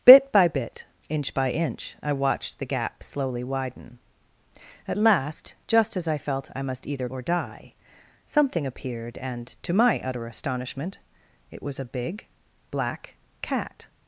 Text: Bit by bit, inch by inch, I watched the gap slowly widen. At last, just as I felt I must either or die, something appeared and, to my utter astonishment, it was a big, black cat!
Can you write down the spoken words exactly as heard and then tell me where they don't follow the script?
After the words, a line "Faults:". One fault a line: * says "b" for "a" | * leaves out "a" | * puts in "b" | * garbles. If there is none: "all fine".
Bit by bit, inch by inch, I watched the gap slowly widen. At last, just as I felt I must either or die, something appeared and, to my utter astonishment, it was a big, black cat!
Faults:
all fine